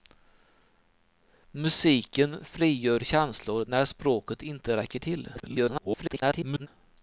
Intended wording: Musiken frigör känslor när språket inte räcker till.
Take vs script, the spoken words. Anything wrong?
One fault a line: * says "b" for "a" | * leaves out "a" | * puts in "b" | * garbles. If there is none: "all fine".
* garbles